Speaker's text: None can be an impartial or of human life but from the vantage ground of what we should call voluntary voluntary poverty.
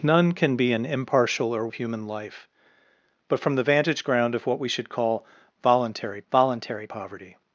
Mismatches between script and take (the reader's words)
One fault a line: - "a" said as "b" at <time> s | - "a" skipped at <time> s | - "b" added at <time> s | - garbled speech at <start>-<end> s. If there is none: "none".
none